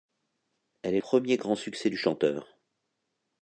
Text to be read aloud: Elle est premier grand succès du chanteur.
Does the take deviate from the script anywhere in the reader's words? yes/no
no